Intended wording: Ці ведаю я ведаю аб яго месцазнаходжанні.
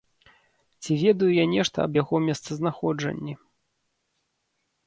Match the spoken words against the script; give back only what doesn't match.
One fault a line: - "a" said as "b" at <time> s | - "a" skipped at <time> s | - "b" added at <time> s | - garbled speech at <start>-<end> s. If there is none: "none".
- "ведаю" said as "нешта" at 1.6 s